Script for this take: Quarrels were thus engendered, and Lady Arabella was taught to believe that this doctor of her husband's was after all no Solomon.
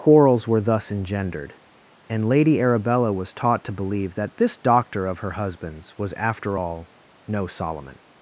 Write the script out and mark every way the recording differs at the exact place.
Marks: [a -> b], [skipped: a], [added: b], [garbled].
Quarrels were thus engendered, and Lady Arabella was taught to believe that this doctor of her husband's was after all no Solomon.